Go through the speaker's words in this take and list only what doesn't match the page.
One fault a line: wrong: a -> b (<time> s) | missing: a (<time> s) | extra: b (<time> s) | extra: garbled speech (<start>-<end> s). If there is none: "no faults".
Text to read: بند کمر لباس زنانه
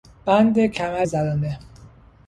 missing: لباس (1.1 s)